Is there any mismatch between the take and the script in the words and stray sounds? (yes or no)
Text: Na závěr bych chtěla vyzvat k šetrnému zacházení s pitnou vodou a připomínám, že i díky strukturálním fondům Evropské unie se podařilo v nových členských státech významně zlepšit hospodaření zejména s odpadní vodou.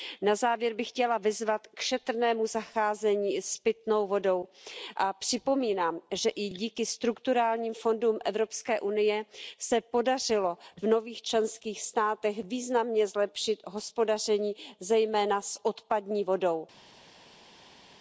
no